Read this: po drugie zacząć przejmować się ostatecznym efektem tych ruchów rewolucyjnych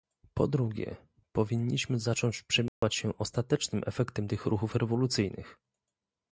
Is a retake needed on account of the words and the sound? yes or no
yes